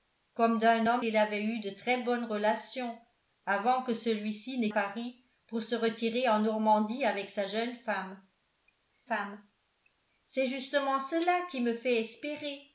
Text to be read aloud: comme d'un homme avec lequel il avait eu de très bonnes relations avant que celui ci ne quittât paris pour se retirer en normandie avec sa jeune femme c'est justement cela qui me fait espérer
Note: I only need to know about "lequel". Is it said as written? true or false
false